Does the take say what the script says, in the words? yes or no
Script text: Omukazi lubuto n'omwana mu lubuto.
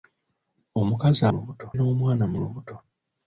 yes